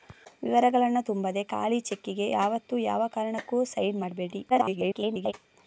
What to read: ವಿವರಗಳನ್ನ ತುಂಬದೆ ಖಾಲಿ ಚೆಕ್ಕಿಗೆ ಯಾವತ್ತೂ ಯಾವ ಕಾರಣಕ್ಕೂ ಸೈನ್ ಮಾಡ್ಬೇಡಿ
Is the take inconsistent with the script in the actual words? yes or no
yes